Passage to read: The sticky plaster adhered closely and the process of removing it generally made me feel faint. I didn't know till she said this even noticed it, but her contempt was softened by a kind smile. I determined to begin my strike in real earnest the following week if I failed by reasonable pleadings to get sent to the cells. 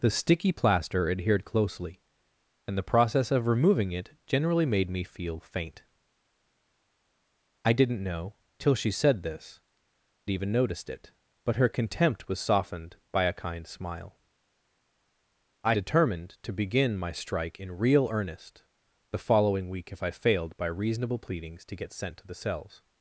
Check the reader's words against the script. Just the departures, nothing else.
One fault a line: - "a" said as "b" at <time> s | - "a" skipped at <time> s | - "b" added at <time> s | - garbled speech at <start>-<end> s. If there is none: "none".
none